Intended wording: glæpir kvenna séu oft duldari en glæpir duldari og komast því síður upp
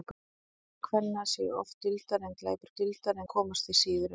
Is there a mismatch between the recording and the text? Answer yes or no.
no